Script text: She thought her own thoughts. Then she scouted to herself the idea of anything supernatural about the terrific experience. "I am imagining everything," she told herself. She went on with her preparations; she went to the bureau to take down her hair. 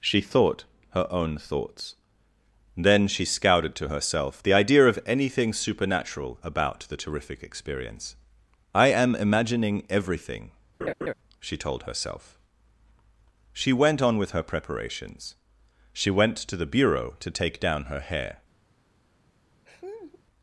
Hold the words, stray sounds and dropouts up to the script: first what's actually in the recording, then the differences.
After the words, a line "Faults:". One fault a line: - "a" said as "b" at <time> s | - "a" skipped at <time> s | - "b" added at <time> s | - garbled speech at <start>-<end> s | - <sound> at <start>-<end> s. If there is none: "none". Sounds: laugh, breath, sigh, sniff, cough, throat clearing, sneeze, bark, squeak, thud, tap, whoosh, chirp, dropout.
She thought her own thoughts. Then she scouted to herself the idea of anything supernatural about the terrific experience. "I am imagining everything," she told herself. She went on with her preparations; she went to the bureau to take down her hair.
Faults:
- laugh at 10.8-11.1 s
- laugh at 19.7-20.2 s